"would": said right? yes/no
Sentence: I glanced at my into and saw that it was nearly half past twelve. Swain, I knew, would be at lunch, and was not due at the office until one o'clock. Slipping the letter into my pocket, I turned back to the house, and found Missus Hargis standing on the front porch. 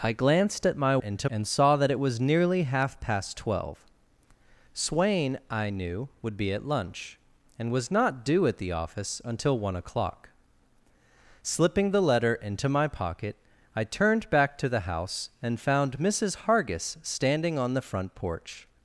yes